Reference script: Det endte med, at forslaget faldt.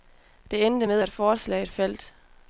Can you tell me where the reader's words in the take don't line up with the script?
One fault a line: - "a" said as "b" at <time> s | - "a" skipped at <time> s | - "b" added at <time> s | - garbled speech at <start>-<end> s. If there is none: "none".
none